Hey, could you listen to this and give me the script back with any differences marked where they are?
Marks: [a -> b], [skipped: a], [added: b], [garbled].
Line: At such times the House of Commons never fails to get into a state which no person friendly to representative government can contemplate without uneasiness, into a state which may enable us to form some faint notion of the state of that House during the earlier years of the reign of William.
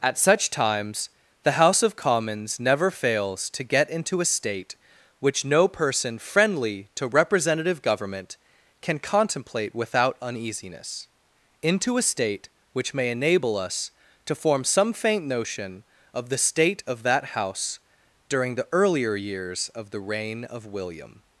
At such times the House of Commons never fails to get into a state which no person friendly to representative government can contemplate without uneasiness, into a state which may enable us to form some faint notion of the state of that House during the earlier years of the reign of William.